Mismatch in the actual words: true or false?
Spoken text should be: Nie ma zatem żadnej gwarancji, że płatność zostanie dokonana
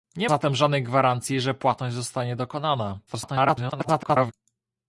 true